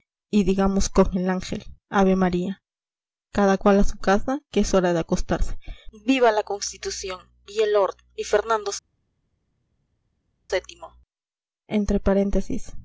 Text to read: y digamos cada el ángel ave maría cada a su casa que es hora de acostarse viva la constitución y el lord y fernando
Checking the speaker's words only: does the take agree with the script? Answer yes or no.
no